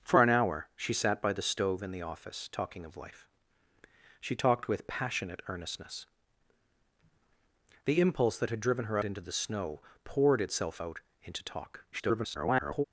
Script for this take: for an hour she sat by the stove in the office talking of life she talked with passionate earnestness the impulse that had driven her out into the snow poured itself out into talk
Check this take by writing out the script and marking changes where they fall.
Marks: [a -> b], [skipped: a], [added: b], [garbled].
for an hour she sat by the stove in the office talking of life she talked with passionate earnestness the impulse that had driven her [skipped: out] into the snow poured itself out into talk [garbled]